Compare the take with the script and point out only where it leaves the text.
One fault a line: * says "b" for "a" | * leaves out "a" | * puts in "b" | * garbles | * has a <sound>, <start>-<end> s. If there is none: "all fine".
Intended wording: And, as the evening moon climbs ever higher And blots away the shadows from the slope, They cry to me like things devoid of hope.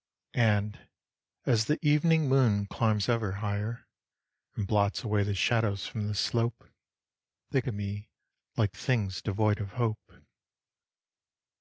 * leaves out "cry"